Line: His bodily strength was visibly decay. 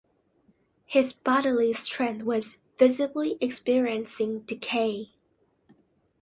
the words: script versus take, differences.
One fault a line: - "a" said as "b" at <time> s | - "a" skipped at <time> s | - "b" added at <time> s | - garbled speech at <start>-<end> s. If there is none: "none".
- "experiencing" added at 3.4 s